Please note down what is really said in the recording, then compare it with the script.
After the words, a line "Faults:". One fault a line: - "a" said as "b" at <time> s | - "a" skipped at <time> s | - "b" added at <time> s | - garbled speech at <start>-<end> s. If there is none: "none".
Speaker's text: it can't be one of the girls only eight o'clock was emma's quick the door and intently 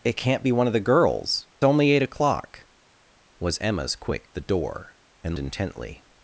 it can't be one of the girls only eight o'clock was emma's quick the door and intently
Faults:
none